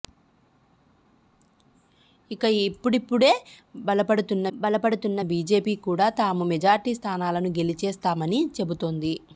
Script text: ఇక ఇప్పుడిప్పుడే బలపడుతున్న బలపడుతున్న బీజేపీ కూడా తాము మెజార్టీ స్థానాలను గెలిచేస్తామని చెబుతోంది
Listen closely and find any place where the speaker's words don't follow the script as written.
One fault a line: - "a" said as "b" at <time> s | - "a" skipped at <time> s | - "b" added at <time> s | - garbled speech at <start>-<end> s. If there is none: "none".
none